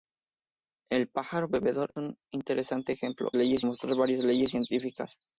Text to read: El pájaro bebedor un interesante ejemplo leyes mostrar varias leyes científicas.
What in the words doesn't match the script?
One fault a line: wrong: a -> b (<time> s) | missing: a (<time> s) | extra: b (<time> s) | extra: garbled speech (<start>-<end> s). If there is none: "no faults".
no faults